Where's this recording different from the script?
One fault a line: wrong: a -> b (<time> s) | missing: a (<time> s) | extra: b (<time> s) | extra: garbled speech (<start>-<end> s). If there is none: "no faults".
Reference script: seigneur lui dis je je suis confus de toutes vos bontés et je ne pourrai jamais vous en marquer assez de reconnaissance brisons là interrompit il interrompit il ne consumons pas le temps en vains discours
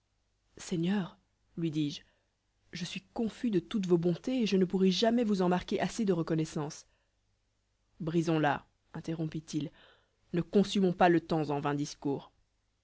missing: interrompit il (9.7 s)